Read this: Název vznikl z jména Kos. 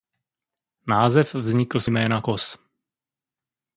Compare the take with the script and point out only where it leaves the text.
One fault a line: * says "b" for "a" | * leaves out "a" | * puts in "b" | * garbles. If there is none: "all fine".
all fine